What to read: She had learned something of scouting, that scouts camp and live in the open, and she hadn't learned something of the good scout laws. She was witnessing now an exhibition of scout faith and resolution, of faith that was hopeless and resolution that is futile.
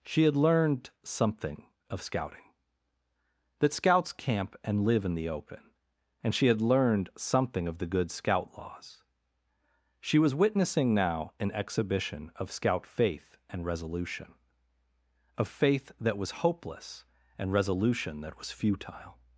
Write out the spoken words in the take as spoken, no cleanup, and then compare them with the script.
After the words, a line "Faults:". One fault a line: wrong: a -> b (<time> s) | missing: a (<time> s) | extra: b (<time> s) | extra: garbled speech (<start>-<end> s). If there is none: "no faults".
She had learned something of scouting, that scouts camp and live in the open, and she had learned something of the good scout laws. She was witnessing now an exhibition of scout faith and resolution, of faith that was hopeless and resolution that was futile.
Faults:
wrong: hadn't -> had (6.5 s)
wrong: is -> was (18.4 s)